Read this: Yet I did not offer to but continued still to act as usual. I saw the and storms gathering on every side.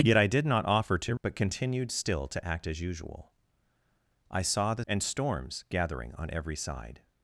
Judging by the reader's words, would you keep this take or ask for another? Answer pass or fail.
pass